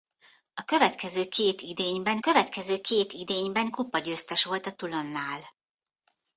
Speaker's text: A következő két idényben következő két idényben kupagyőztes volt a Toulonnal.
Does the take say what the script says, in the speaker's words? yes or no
yes